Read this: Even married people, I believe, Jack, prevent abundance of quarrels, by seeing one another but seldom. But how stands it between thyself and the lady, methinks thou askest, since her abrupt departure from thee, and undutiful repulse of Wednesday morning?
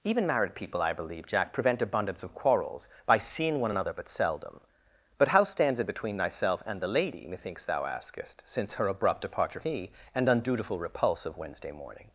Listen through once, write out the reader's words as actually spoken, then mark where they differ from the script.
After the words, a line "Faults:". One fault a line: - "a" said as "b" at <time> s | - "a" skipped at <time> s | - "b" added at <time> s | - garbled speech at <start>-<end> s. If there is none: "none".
Even married people, I believe, Jack, prevent abundance of quarrels, by seeing one another but seldom. But how stands it between thyself and the lady, methinks thou askest, since her abrupt departure thee, and undutiful repulse of Wednesday morning?
Faults:
- "from" skipped at 9.6 s